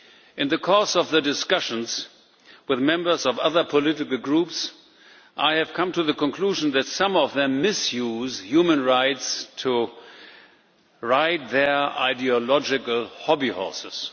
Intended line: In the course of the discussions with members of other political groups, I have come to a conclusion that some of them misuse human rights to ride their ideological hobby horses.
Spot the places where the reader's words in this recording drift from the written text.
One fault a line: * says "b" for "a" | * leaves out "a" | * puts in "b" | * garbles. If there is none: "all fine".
* says "the" for "a"